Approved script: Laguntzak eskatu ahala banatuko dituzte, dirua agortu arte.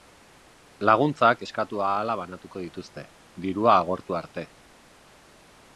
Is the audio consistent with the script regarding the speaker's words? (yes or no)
yes